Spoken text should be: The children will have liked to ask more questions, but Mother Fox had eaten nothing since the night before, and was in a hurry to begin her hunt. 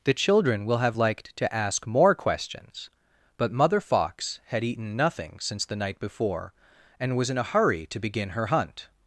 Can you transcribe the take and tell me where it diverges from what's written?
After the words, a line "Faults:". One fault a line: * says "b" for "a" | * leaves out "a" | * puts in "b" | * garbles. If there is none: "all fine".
The children will have liked to ask more questions, but Mother Fox had eaten nothing since the night before, and was in a hurry to begin her hunt.
Faults:
all fine